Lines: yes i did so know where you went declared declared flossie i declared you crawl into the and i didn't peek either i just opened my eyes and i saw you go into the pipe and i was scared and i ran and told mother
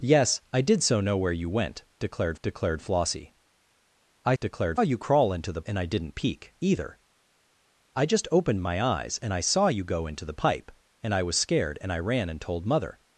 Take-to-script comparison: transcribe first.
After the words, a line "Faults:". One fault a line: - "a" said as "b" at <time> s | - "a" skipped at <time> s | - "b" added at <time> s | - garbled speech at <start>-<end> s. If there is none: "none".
yes i did so know where you went declared declared flossie i declared you crawl into the and i didn't peek either i just opened my eyes and i saw you go into the pipe and i was scared and i ran and told mother
Faults:
none